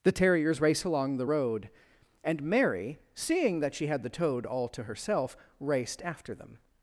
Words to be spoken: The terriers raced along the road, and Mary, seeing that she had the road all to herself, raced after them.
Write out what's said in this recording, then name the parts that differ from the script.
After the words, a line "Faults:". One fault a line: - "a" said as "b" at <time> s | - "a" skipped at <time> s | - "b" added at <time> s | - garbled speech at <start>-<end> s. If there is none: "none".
The terriers race along the road, and Mary, seeing that she had the toad all to herself, raced after them.
Faults:
- "raced" said as "race" at 0.6 s
- "road" said as "toad" at 4.1 s